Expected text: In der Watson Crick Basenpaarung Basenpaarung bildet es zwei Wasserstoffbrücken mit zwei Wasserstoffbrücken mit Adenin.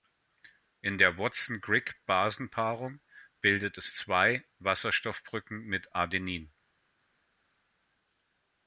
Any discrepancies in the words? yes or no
yes